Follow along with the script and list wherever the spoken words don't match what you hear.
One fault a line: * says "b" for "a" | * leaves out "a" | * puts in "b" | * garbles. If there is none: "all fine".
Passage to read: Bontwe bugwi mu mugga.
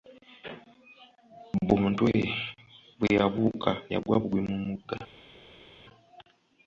* puts in "bwe yabuuka yagwa"